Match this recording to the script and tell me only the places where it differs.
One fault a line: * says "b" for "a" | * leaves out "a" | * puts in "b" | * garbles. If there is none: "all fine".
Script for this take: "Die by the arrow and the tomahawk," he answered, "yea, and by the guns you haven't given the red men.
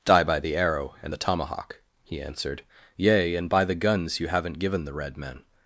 all fine